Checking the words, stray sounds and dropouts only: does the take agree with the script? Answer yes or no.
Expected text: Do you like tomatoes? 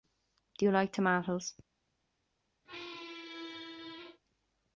no